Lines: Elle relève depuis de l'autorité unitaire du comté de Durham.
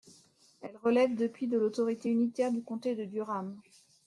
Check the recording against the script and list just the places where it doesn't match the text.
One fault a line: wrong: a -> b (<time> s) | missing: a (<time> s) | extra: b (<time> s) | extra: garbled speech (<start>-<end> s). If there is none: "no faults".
no faults